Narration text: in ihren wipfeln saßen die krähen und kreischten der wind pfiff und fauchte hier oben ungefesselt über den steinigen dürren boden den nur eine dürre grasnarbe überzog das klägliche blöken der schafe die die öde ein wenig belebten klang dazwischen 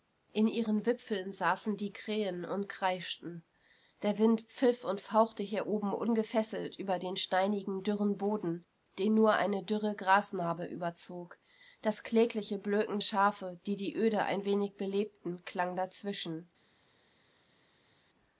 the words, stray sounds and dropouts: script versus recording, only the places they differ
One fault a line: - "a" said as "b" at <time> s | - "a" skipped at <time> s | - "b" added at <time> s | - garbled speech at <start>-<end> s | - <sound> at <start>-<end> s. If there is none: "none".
- "der" skipped at 13.0 s